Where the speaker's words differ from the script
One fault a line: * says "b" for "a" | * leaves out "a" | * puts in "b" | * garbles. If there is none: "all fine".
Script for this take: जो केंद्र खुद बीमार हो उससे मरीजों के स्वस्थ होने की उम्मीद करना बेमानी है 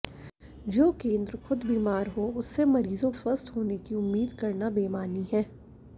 * leaves out "के"